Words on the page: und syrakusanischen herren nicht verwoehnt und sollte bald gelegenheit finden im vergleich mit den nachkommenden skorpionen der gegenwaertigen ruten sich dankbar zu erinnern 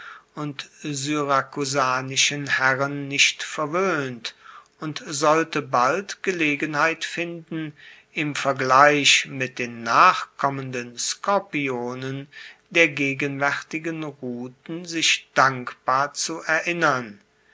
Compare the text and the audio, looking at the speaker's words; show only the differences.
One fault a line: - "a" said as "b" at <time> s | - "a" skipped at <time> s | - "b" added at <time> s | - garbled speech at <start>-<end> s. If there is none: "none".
none